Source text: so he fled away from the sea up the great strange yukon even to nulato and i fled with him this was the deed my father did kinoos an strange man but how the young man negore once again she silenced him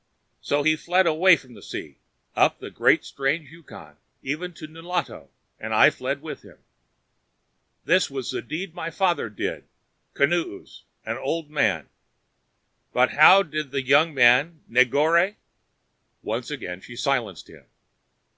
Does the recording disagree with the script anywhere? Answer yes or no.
yes